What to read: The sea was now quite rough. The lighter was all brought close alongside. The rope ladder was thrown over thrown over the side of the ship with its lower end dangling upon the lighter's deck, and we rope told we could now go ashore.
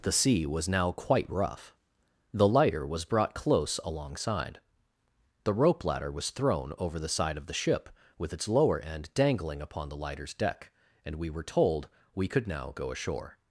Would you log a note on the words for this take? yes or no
yes